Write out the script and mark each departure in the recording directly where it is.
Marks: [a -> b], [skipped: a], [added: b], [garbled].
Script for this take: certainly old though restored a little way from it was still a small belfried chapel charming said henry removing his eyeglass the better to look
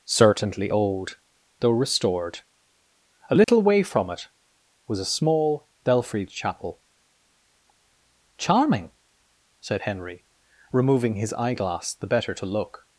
certainly old though restored a little way from it was [skipped: still] a small belfried chapel charming said henry removing his eyeglass the better to look